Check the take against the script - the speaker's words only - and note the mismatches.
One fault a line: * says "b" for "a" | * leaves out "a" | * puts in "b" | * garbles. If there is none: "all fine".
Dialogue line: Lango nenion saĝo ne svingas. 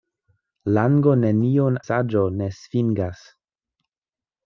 all fine